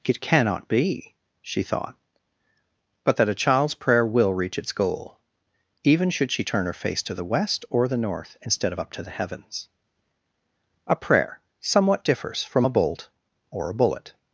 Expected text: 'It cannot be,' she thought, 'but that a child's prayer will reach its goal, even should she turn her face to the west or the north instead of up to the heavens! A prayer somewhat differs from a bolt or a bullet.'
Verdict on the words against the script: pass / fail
pass